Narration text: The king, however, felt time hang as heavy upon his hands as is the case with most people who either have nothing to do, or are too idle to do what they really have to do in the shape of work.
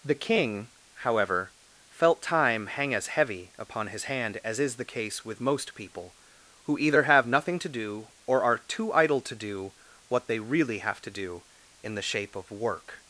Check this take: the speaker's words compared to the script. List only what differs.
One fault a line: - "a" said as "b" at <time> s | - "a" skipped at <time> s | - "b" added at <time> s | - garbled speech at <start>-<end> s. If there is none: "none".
- "hands" said as "hand" at 4.0 s